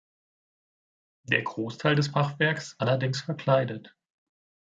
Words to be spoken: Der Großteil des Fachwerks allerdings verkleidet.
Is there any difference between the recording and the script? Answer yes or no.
no